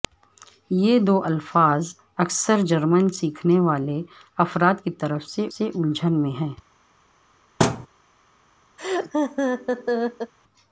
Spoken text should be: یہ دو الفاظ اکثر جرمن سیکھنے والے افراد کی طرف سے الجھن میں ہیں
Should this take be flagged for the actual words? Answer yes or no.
yes